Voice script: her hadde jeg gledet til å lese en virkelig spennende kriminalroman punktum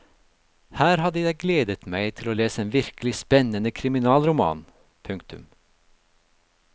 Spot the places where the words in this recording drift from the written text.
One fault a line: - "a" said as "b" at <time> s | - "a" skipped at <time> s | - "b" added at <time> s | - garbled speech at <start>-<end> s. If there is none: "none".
- "meg" added at 1.9 s